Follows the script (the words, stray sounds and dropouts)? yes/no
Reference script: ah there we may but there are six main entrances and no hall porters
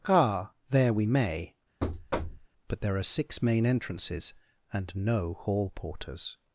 no